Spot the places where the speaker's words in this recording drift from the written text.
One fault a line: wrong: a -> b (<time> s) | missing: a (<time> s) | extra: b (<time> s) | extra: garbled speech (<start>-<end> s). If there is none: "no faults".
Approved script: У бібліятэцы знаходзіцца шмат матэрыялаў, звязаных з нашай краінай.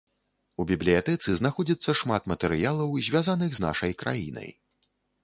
no faults